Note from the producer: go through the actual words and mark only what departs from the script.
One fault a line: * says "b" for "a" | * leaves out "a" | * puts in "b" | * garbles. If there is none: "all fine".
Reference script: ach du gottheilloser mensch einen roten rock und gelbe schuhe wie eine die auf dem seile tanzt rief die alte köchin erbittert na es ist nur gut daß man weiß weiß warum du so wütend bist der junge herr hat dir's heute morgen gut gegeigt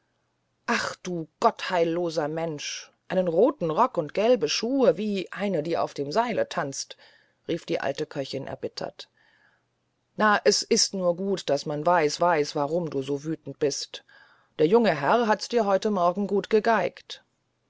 all fine